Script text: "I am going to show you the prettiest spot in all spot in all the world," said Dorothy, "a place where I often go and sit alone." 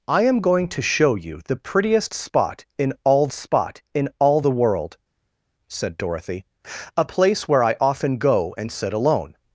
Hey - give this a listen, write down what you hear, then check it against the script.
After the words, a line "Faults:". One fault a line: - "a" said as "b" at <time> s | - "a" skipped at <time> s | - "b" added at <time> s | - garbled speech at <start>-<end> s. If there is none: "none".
"I am going to show you the prettiest spot in all spot in all the world," said Dorothy, "a place where I often go and sit alone."
Faults:
none